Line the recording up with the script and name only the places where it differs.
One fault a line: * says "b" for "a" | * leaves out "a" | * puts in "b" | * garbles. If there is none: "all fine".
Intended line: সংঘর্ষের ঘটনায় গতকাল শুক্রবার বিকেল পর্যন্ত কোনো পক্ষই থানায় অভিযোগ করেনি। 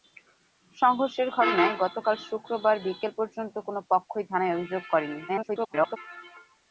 * garbles